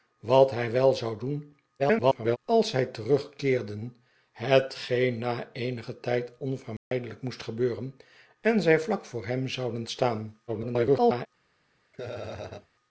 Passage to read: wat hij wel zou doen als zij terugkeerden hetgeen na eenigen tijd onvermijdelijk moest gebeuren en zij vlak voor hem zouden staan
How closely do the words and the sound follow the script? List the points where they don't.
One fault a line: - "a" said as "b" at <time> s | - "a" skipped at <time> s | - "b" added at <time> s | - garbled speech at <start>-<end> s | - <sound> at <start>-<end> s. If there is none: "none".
- garbled speech at 1.8-2.4 s
- dropout at 6.8-6.9 s
- garbled speech at 10.5-11.3 s
- laugh at 11.9-12.7 s